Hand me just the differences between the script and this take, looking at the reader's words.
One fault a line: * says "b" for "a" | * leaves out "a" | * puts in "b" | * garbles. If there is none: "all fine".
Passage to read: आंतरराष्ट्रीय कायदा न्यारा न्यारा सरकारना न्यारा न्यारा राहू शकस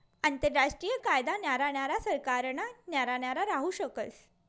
all fine